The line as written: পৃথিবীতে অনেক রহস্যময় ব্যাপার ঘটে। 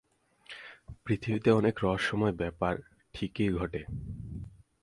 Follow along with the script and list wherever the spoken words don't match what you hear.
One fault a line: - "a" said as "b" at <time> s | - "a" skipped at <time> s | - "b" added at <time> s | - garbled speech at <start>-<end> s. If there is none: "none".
- "ঠিকই" added at 3.1 s